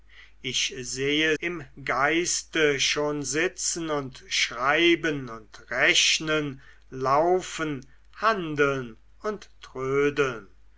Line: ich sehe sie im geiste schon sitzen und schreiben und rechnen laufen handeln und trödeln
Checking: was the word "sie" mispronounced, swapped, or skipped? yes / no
yes